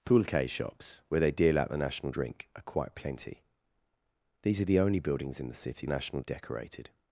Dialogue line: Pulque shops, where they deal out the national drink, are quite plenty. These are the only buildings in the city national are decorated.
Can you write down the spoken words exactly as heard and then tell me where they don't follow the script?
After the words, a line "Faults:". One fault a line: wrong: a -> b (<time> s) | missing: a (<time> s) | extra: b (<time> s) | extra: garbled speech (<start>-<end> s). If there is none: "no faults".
Pulque shops, where they deal out the national drink, are quite plenty. These are the only buildings in the city national are decorated.
Faults:
no faults